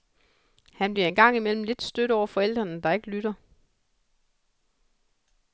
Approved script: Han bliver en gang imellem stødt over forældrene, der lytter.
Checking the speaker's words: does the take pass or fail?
fail